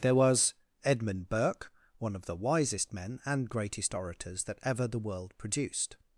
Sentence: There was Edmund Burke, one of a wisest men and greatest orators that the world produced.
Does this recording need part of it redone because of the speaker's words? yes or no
yes